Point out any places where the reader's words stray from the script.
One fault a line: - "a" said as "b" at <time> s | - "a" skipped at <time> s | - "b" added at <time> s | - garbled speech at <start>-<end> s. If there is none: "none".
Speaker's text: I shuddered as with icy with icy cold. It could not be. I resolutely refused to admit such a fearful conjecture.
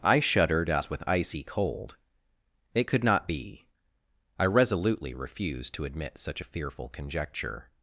- "with icy" skipped at 1.4 s